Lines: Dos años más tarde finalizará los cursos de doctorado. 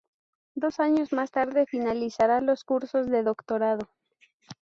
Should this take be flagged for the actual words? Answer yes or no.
no